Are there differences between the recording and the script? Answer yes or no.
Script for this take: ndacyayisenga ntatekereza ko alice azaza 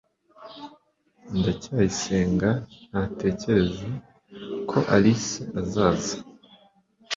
no